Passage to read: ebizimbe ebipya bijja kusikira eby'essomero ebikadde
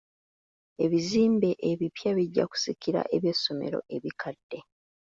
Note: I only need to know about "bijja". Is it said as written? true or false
true